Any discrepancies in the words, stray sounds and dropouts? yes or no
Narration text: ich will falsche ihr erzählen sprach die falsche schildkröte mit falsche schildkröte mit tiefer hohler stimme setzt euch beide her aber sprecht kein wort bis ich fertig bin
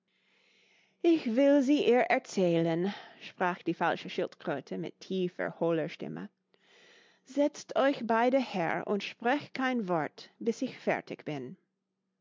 yes